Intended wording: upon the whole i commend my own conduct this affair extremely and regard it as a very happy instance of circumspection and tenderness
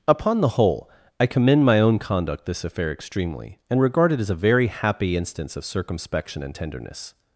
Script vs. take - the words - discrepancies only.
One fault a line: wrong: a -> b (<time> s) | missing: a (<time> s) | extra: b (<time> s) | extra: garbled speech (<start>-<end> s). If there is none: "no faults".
no faults